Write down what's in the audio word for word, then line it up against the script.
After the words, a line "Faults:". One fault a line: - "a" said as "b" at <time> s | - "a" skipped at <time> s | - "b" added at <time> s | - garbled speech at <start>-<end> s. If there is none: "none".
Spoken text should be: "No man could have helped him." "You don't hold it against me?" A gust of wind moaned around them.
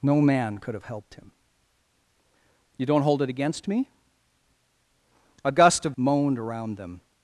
"No man could have helped him." "You don't hold it against me?" A gust of moaned around them.
Faults:
- "wind" skipped at 6.0 s